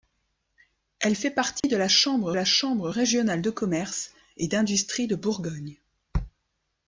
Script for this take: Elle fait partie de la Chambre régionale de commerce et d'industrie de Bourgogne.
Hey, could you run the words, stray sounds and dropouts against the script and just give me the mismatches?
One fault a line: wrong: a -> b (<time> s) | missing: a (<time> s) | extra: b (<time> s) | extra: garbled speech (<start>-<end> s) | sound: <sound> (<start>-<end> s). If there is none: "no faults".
sound: dropout (1.6-1.6 s)
extra: la Chambre (2.3 s)